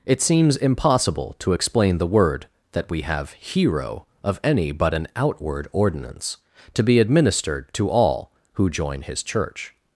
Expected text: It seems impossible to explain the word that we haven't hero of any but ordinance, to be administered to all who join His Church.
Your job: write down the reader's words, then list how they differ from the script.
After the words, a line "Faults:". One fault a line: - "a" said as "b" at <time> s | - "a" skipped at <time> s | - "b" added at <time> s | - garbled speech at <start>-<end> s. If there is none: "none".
It seems impossible to explain the word that we have hero of any but an outward ordinance, to be administered to all who join His Church.
Faults:
- "haven't" said as "have" at 3.0 s
- "an outward" added at 4.9 s